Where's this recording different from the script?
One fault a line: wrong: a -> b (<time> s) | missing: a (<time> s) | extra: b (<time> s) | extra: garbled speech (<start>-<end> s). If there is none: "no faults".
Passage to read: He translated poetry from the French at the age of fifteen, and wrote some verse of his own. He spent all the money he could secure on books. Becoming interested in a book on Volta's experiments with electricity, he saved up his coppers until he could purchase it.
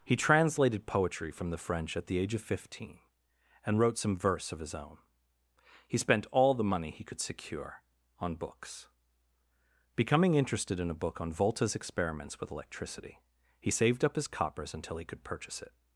no faults